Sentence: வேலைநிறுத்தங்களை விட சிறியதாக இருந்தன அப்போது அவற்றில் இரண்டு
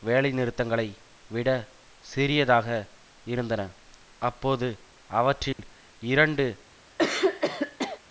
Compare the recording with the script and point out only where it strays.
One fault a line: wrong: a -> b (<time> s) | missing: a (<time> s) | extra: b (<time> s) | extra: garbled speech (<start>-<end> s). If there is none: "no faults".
no faults